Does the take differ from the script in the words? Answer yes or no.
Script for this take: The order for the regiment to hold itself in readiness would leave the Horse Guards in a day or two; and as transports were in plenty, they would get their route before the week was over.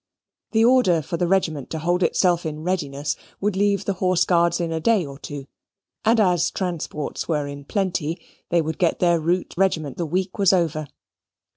yes